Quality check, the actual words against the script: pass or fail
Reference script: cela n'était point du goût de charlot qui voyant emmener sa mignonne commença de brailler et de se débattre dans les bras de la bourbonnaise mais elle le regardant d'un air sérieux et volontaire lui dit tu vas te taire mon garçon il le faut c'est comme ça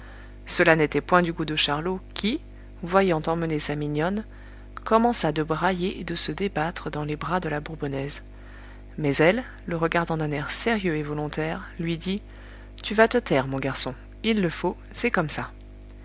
pass